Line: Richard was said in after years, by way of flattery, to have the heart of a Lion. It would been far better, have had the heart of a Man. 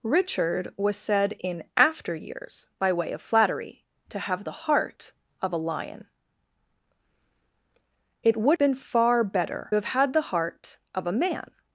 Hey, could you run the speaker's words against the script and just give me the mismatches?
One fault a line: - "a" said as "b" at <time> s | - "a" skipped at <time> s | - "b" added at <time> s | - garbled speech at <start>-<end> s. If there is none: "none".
none